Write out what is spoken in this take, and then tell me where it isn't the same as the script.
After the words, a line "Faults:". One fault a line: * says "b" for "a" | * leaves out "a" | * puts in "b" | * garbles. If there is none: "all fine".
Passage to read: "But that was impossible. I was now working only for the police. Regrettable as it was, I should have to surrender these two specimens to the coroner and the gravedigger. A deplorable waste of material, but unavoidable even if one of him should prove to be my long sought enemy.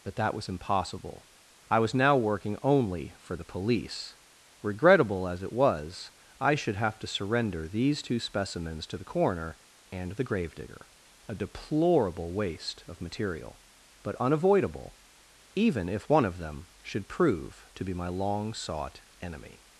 "But that was impossible. I was now working only for the police. Regrettable as it was, I should have to surrender these two specimens to the coroner and the gravedigger. A deplorable waste of material, but unavoidable even if one of them should prove to be my long sought enemy.
Faults:
* says "them" for "him"